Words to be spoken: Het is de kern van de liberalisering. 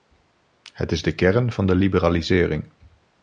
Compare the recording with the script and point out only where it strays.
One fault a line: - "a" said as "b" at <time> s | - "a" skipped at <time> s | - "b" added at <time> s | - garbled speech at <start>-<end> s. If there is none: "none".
none